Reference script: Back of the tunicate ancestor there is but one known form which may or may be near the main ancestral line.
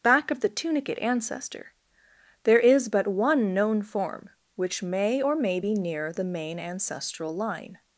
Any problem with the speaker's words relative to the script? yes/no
no